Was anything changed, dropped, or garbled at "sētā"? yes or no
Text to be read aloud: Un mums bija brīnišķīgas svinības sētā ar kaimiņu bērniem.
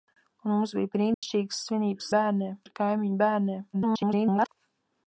yes